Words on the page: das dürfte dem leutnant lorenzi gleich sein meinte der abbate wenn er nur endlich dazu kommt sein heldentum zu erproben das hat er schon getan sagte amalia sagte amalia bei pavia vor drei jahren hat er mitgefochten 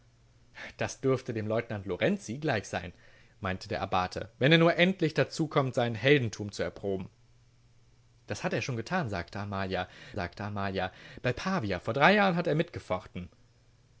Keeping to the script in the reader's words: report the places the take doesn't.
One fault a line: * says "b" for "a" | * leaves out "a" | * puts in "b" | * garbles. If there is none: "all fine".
all fine